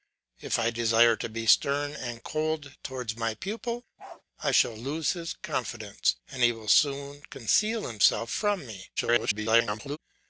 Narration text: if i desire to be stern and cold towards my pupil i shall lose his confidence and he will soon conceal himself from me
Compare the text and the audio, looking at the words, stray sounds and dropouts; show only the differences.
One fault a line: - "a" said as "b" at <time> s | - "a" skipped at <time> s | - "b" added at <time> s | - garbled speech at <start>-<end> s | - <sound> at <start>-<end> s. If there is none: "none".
- bark at 4.0-4.2 s
- garbled speech at 9.0-10.0 s